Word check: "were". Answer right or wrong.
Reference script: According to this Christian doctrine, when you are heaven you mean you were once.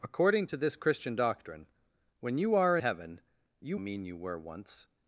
right